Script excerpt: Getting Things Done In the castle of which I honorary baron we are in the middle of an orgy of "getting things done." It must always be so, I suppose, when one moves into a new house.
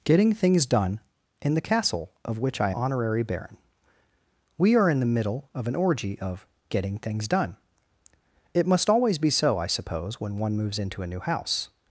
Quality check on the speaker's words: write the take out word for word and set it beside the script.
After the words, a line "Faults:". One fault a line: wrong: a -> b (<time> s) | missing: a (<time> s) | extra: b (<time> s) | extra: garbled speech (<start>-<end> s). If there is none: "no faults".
Getting Things Done In the castle of which I honorary baron we are in the middle of an orgy of "getting things done." It must always be so, I suppose, when one moves into a new house.
Faults:
no faults